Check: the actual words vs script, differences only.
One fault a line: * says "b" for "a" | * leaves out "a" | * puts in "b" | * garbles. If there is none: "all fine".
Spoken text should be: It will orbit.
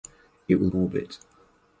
all fine